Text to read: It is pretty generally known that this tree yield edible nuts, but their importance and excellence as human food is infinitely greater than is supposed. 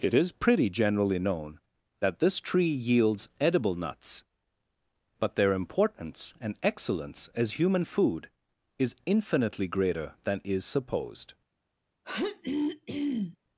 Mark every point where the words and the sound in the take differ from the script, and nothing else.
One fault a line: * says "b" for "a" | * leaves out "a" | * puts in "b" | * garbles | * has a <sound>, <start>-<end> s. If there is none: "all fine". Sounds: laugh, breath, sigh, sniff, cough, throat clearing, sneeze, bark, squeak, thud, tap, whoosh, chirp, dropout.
* says "yields" for "yield"
* has a throat clearing, 12.0-13.4 s